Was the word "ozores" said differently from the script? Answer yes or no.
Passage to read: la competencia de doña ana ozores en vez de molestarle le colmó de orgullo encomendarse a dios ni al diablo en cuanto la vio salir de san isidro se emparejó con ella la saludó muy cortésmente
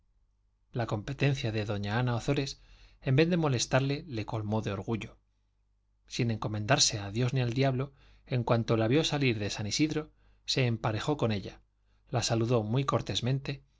no